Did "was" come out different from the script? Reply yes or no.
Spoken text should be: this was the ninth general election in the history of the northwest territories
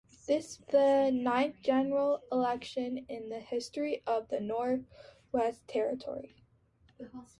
yes